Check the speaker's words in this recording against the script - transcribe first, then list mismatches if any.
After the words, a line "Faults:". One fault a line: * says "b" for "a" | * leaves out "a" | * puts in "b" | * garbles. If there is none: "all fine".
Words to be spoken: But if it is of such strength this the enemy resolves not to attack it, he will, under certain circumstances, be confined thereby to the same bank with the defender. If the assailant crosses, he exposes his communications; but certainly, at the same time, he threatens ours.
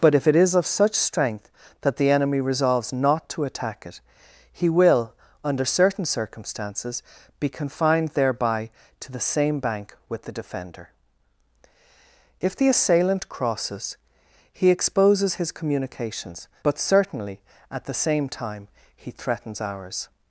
But if it is of such strength that the enemy resolves not to attack it, he will, under certain circumstances, be confined thereby to the same bank with the defender. If the assailant crosses, he exposes his communications; but certainly, at the same time, he threatens ours.
Faults:
* says "that" for "this"